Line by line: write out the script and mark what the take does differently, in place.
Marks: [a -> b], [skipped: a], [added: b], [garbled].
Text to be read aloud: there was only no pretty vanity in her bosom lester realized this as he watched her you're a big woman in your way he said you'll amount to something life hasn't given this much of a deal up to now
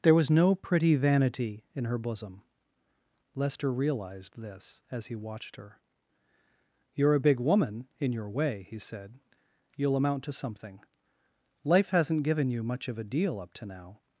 there was [skipped: only] no pretty vanity in her bosom lester realized this as he watched her you're a big woman in your way he said you'll amount to something life hasn't given [this -> you] much of a deal up to now